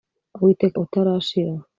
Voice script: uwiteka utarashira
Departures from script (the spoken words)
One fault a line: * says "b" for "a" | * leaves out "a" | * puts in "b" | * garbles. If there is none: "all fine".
all fine